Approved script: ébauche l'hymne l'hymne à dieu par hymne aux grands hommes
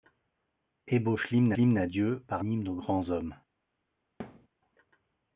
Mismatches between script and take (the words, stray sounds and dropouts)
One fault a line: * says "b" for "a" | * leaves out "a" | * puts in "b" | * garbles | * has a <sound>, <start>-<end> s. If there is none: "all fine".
* has a thud, 4.2-4.5 s